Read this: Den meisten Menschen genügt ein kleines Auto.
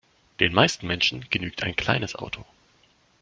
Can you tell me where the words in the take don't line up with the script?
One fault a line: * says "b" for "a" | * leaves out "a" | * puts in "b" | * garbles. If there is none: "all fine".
all fine